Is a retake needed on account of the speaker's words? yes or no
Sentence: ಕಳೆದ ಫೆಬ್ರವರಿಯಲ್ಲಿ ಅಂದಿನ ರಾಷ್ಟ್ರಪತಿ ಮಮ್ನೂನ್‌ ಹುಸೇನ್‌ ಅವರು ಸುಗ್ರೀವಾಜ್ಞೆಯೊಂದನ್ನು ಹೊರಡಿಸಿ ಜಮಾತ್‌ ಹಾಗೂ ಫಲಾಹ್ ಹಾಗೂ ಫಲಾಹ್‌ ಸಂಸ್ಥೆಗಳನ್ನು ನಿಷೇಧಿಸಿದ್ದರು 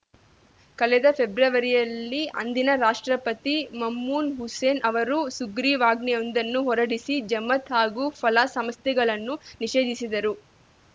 yes